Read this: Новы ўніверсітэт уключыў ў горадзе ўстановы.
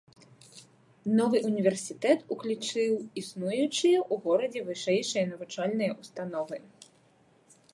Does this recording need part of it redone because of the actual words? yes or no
yes